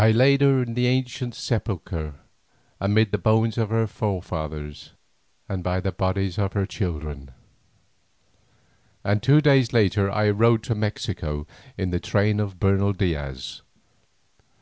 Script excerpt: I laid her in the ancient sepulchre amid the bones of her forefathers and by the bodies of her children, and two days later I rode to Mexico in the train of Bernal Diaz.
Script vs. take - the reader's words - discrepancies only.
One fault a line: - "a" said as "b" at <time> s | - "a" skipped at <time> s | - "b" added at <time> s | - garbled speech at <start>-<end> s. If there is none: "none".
none